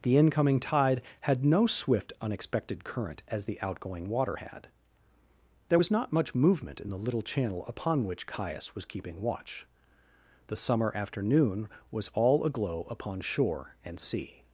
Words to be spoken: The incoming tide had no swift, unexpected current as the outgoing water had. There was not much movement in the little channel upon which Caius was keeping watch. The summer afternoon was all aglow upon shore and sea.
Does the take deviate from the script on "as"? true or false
false